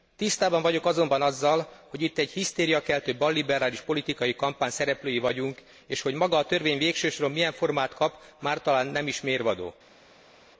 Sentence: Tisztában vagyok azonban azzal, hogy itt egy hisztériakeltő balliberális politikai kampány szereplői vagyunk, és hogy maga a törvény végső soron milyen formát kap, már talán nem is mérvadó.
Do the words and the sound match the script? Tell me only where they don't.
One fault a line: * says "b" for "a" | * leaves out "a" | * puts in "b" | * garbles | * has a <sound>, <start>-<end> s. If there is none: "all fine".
all fine